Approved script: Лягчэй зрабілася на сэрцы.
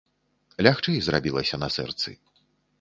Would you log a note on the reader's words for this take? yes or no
no